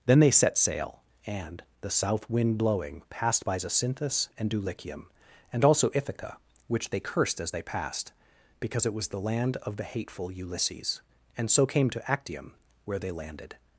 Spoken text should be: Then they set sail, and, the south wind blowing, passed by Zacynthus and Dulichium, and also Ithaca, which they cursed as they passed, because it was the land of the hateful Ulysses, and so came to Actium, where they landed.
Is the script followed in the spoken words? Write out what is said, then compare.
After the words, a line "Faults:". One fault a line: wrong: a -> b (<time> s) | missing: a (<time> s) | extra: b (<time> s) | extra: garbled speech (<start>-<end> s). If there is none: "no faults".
Then they set sail, and, the south wind blowing, passed by Zacynthus and Dulichium, and also Ithaca, which they cursed as they passed, because it was the land of the hateful Ulysses, and so came to Actium, where they landed.
Faults:
no faults